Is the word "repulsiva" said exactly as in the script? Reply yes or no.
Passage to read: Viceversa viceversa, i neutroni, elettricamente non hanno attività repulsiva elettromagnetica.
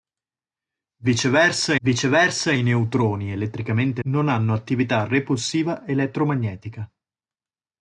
yes